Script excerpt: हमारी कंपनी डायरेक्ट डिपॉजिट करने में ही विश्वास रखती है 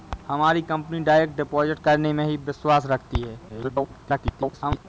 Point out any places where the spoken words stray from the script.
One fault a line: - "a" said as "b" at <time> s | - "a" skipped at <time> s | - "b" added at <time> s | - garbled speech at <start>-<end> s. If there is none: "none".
- garbled speech at 3.5-4.8 s